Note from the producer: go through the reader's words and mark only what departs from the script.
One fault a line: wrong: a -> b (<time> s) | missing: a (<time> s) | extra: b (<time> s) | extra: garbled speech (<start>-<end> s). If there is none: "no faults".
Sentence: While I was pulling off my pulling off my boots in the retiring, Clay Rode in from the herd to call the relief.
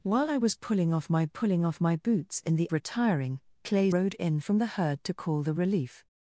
no faults